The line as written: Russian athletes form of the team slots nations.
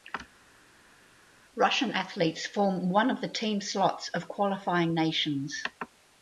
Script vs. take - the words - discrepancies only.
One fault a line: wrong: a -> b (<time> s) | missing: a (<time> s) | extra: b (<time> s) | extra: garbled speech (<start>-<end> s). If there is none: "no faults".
extra: one (2.9 s)
extra: of qualifying (4.1 s)